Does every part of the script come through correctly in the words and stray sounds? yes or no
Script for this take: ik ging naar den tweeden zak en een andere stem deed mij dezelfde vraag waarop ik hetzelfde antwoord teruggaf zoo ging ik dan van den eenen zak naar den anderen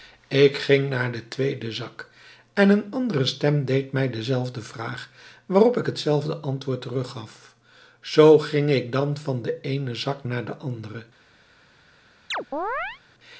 no